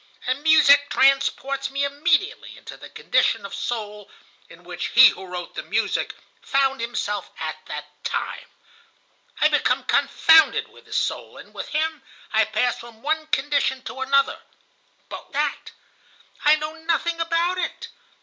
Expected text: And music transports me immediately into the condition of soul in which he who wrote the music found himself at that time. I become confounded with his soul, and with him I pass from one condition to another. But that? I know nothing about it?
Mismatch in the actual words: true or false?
false